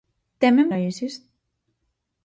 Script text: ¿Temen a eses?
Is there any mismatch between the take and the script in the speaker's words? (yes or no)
no